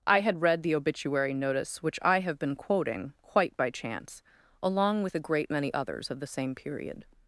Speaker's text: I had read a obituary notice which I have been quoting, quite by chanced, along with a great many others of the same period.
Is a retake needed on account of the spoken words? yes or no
yes